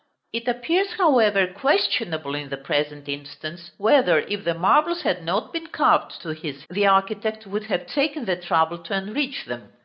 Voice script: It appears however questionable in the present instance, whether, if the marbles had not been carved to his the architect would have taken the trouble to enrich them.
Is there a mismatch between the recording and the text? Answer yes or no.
no